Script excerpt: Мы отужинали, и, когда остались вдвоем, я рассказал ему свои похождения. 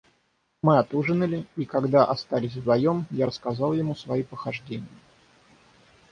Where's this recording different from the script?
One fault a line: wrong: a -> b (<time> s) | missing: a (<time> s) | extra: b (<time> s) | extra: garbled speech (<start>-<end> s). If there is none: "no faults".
no faults